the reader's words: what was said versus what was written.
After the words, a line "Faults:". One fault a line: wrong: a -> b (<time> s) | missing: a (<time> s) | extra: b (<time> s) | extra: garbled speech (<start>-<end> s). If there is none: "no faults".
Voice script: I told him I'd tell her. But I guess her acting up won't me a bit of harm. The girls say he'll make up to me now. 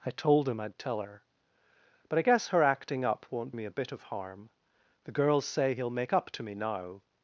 I told him I'd tell her. But I guess her acting up won't me a bit of harm. The girls say he'll make up to me now.
Faults:
no faults